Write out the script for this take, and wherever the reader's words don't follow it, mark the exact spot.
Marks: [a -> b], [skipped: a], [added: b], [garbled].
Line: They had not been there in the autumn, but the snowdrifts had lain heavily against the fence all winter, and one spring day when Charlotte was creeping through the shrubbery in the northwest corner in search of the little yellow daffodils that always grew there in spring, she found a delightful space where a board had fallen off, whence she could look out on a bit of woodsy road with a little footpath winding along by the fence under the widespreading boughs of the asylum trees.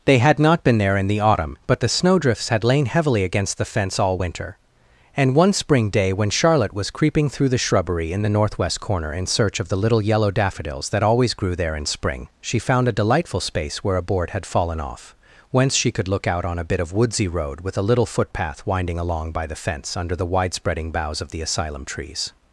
They had not been there in the autumn, but the snowdrifts had lain heavily against the fence all winter, and one spring day when Charlotte was creeping through the shrubbery in the northwest corner in search of the little yellow daffodils that always grew there in spring, she found a delightful space where a board had fallen off, whence she could look out on a bit of woodsy road with a little footpath winding along by the fence under the widespreading boughs of the asylum trees.